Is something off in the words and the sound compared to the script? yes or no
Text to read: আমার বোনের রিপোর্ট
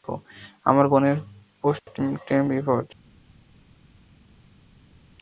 yes